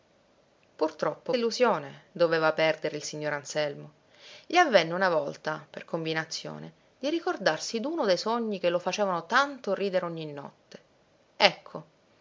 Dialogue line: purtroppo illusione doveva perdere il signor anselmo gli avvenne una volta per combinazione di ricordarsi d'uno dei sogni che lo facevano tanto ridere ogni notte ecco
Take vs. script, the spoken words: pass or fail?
pass